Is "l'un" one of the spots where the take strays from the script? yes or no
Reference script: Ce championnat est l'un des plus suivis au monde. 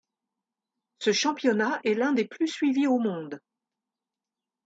no